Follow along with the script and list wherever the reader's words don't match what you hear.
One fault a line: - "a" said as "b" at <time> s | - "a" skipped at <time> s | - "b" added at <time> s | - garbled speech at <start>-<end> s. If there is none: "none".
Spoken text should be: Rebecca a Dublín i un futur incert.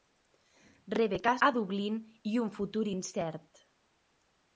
none